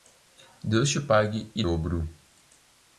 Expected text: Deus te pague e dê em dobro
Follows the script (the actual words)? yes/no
no